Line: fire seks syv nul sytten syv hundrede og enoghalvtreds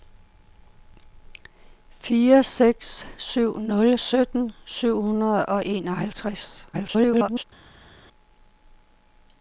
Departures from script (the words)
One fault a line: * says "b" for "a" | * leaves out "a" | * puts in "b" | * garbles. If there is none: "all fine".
* garbles